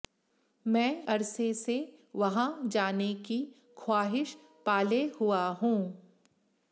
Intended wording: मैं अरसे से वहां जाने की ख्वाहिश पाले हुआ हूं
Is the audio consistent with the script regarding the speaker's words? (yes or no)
yes